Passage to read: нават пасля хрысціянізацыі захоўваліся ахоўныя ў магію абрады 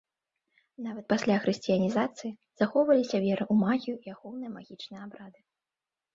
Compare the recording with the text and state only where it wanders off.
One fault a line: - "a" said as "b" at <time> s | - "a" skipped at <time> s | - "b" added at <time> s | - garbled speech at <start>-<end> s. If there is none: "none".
- "ахоўныя" said as "вера" at 3.2 s
- "і ахоўныя магічныя" added at 4.0 s